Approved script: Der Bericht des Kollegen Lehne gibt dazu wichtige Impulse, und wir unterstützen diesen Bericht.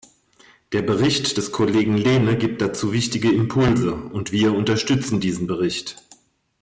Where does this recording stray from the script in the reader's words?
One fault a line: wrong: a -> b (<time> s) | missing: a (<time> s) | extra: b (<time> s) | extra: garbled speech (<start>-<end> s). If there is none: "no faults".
no faults